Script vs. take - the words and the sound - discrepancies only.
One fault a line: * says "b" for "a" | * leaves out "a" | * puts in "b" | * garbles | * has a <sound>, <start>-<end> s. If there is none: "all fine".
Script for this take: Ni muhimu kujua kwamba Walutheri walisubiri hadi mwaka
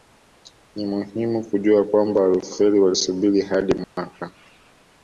* has a dropout, 3.8-4.0 s